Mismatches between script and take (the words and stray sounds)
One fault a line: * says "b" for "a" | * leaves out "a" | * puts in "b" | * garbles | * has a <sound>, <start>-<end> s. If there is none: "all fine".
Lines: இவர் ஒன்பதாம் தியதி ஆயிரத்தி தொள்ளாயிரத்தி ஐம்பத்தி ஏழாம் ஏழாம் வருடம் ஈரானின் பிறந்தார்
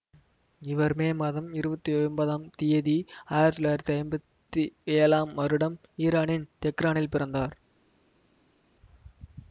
* puts in "மே மாதம் இருபத்தி"
* leaves out "ஏழாம்"
* puts in "தெஹ்ரானில்"